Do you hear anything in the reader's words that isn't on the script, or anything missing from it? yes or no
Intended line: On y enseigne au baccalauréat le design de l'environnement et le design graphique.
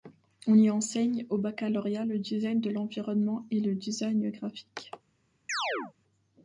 no